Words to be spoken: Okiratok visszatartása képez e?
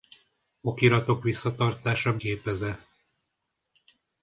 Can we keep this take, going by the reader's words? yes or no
yes